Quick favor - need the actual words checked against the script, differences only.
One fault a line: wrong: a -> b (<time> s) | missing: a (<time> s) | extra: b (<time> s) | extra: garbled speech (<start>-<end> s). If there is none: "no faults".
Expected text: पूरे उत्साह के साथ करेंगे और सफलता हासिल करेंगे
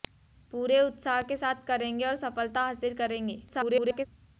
extra: garbled speech (3.5-4.1 s)